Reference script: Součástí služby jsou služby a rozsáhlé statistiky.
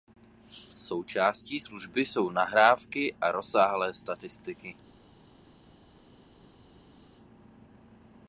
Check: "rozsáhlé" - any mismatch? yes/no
no